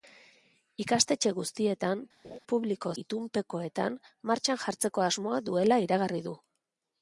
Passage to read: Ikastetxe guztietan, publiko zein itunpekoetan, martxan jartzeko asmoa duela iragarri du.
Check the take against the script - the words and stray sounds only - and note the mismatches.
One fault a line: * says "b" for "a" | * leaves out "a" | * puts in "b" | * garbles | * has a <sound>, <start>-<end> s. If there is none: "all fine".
* has a laugh, 2.2-2.4 s
* leaves out "zein"